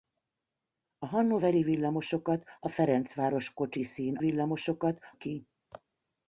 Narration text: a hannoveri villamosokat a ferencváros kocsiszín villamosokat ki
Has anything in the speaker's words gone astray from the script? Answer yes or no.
no